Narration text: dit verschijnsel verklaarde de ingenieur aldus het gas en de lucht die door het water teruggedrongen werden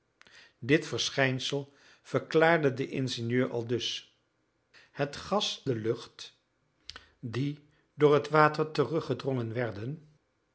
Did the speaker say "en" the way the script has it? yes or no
no